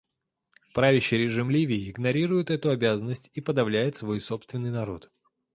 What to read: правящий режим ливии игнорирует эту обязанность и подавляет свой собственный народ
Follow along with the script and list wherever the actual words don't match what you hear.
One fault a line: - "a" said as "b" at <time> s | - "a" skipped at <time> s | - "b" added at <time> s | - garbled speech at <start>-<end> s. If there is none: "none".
none